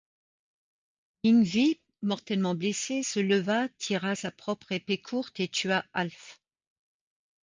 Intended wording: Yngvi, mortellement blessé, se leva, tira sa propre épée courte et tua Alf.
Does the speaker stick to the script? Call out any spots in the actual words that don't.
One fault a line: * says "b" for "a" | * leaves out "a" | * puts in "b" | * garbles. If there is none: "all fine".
all fine